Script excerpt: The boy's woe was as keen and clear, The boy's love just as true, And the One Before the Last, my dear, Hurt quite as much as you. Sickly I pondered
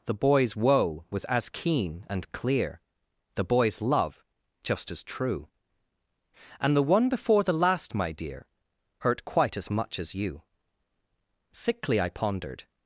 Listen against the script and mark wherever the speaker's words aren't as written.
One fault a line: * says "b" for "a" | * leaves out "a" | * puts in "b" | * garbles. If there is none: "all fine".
all fine